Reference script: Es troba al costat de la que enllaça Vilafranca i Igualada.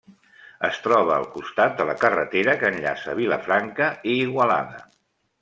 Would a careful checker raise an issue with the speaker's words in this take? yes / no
yes